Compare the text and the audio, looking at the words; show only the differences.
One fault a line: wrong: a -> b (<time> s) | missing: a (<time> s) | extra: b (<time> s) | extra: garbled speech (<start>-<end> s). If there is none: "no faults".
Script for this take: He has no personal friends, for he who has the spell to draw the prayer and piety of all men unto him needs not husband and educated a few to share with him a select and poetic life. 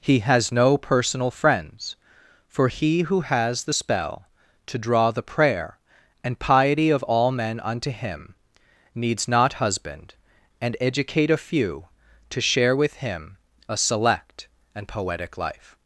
wrong: educated -> educate (10.8 s)